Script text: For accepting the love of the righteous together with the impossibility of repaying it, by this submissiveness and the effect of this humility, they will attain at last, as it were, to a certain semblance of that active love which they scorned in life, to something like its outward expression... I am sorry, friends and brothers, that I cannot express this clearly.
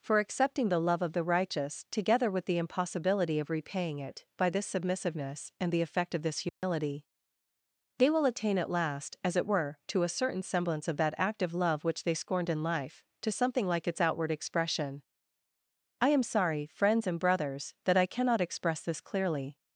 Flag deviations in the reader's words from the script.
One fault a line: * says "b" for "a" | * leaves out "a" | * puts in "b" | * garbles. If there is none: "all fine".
all fine